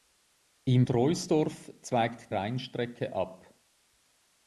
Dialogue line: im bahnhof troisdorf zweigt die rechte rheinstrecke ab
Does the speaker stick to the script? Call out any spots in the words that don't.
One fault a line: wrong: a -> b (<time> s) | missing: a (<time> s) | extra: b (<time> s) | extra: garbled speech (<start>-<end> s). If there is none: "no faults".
missing: bahnhof (0.9 s)
missing: die rechte (2.3 s)